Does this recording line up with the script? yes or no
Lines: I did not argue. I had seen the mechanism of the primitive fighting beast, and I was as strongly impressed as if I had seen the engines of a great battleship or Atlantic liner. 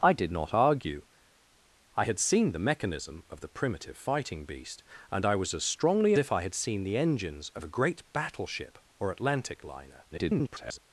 no